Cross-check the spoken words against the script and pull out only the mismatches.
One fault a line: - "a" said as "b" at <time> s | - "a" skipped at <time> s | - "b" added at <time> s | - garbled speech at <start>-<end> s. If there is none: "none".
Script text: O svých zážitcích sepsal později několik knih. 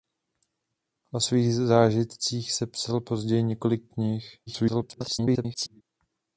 - garbled speech at 4.5-5.8 s